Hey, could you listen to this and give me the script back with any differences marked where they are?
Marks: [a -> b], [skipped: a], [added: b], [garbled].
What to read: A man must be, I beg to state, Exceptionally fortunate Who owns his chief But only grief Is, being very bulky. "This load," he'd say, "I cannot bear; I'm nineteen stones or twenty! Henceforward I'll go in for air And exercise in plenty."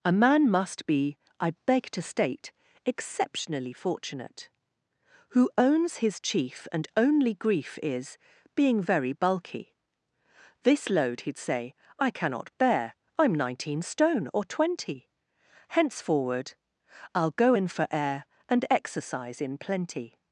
A man must be, I beg to state, Exceptionally fortunate Who owns his chief [But -> And] only grief Is, being very bulky. "This load," he'd say, "I cannot bear; I'm nineteen [stones -> stone] or twenty! Henceforward I'll go in for air And exercise in plenty."